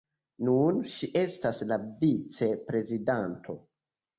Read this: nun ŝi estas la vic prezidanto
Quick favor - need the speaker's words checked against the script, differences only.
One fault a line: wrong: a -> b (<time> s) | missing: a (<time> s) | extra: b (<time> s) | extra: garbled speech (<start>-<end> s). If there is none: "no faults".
no faults